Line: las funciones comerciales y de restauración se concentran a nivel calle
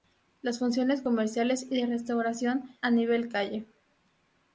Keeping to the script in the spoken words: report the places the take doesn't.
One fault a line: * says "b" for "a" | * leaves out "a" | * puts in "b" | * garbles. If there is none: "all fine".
* leaves out "se concentran"